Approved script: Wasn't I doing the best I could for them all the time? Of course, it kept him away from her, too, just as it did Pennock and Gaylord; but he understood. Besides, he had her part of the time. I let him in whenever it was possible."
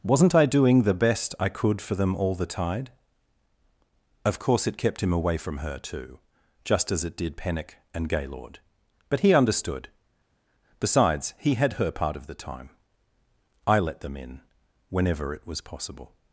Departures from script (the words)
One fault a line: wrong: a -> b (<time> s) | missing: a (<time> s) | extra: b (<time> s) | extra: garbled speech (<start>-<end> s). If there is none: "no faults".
wrong: time -> tide (2.5 s)
wrong: him -> them (14.0 s)